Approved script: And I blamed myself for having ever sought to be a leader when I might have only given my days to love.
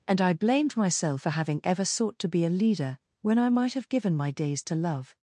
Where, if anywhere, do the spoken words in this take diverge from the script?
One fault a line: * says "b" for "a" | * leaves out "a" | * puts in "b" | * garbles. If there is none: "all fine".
* leaves out "only"